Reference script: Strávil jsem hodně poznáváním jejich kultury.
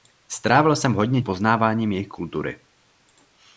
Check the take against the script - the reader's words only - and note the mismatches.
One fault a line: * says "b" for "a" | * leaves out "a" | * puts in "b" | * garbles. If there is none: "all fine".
all fine